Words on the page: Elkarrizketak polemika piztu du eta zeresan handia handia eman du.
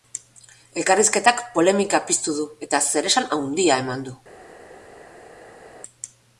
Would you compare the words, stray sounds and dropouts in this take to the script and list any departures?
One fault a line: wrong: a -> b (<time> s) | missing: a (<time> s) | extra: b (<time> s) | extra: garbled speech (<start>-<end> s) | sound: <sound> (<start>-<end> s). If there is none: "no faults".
missing: handia (3.8 s)